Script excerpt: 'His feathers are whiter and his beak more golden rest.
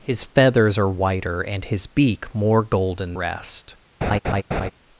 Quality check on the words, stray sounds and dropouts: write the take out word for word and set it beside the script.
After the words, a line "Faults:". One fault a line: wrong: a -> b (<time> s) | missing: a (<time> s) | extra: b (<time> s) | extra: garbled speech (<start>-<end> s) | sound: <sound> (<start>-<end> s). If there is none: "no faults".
'His feathers are whiter and his beak more golden rest.
Faults:
sound: laugh (4.0-4.7 s)